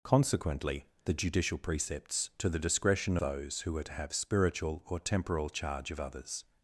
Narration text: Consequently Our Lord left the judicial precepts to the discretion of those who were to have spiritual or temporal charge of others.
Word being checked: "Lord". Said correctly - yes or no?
no